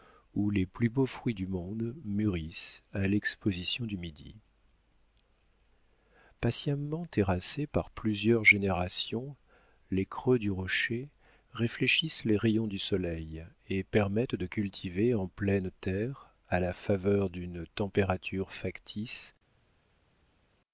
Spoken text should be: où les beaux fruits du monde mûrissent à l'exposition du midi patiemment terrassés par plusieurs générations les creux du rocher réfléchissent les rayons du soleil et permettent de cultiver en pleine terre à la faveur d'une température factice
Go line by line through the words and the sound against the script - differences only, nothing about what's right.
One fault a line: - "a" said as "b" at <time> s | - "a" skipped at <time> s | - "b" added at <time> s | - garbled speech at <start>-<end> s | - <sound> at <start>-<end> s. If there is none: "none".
- "plus" added at 0.7 s